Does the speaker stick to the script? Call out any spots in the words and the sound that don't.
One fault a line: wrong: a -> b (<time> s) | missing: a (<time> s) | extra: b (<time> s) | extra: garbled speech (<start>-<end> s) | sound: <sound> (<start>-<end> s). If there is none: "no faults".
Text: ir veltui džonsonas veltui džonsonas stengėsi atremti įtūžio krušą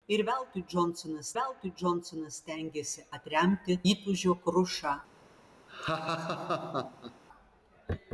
sound: laugh (5.7-7.2 s)